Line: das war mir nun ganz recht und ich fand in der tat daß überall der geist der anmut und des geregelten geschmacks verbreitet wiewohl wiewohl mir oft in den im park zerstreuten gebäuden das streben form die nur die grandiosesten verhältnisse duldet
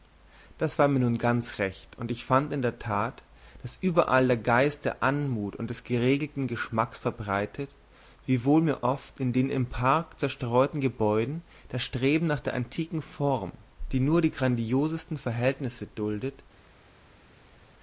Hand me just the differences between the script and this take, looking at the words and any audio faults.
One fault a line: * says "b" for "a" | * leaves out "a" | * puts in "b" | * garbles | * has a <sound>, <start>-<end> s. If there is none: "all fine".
* leaves out "wiewohl"
* puts in "nach der antiken"